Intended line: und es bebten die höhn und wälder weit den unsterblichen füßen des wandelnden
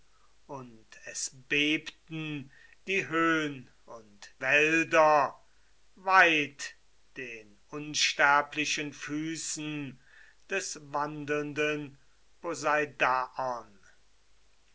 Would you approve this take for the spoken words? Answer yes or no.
yes